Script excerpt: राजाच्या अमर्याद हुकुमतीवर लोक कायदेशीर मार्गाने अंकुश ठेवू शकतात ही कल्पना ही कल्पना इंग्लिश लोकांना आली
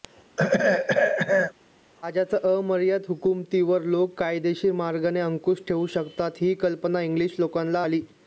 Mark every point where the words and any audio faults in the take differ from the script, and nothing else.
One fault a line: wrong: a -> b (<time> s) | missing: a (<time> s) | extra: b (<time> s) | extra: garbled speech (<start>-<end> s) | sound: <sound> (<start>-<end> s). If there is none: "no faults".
sound: throat clearing (0.4-1.5 s)
missing: ही कल्पना (7.0 s)